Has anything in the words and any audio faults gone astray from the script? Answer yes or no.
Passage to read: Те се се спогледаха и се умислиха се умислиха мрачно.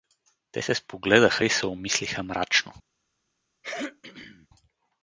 yes